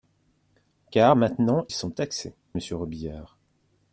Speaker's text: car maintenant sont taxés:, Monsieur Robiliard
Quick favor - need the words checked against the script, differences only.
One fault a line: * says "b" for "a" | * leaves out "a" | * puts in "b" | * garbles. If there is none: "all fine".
all fine